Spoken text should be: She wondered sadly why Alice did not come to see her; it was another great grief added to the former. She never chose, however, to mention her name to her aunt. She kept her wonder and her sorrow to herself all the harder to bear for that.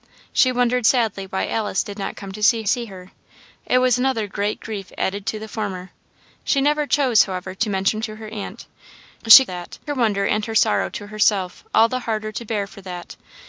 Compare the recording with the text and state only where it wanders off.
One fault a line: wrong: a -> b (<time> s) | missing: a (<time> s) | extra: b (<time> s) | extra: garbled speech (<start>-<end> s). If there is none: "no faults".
extra: see (2.6 s)
missing: her name (8.0 s)
wrong: kept -> that (9.4 s)